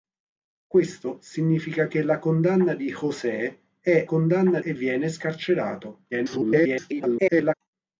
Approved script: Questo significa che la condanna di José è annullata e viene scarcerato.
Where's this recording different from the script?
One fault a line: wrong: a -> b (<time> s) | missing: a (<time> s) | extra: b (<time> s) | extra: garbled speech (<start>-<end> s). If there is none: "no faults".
wrong: annullata -> condanna (4.0 s)
extra: garbled speech (6.1-7.5 s)